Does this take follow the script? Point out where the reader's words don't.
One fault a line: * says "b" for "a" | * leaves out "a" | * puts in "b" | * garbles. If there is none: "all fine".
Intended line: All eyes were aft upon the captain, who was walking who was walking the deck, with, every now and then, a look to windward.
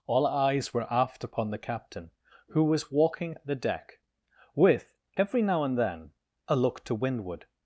* leaves out "who was walking"